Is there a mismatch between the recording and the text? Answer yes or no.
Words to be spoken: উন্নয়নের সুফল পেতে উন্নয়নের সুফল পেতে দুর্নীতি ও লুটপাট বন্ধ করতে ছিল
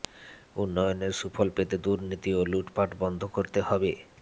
yes